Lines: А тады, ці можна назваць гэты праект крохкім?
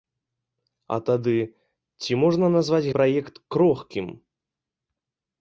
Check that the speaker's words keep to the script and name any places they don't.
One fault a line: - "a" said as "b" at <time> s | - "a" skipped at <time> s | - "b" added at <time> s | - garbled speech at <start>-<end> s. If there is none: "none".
- "гэты" skipped at 2.9 s